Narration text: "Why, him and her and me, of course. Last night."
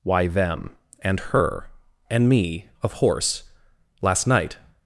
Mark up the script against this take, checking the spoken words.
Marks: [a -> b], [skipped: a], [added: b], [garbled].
"Why, [him -> them] and her and me, of [course. -> horse] Last night."